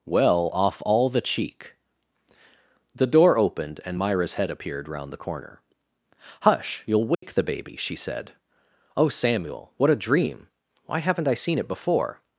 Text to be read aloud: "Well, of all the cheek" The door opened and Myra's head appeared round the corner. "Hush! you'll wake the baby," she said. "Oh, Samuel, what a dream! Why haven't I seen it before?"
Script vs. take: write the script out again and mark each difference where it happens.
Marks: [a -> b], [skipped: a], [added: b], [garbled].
"Well, [of -> off] all the cheek" The door opened and Myra's head appeared round the corner. "Hush! you'll wake the baby," she said. "Oh, Samuel, what a dream! Why haven't I seen it before?"